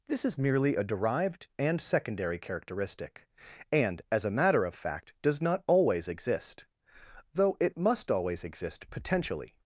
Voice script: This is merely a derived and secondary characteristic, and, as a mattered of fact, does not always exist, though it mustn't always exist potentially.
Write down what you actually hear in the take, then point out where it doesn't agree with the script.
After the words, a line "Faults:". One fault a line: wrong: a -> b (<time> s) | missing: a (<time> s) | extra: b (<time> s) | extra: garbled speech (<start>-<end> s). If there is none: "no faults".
This is merely a derived and secondary characteristic, and, as a matter of fact, does not always exist, though it must always exist potentially.
Faults:
wrong: mattered -> matter (4.3 s)
wrong: mustn't -> must (7.8 s)